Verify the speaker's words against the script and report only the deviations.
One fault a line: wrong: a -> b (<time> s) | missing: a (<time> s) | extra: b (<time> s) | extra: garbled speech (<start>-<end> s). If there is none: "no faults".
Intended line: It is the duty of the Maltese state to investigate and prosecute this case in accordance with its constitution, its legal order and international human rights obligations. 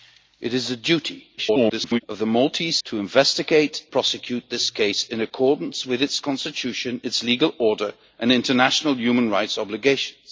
extra: garbled speech (1.4-2.0 s)
missing: state (2.8 s)
missing: and (3.8 s)